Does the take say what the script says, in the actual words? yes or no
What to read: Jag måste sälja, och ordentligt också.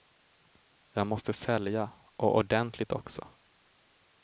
yes